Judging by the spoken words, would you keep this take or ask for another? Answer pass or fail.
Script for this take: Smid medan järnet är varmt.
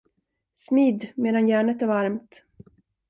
pass